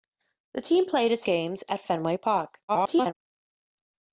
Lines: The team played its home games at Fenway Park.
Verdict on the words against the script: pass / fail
fail